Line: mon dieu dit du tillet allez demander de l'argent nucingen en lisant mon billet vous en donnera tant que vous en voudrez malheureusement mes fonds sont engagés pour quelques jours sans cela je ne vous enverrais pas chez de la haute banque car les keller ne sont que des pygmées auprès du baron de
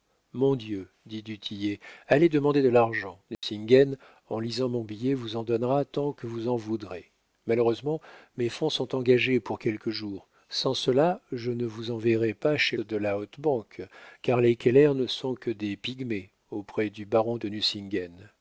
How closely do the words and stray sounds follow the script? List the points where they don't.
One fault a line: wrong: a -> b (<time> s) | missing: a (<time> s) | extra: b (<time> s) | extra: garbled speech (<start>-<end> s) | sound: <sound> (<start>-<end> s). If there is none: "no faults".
sound: dropout (3.3-3.4 s)